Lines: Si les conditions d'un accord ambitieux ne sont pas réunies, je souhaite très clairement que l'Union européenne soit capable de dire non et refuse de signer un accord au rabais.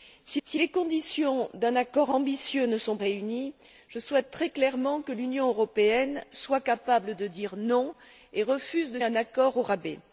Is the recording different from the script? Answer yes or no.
yes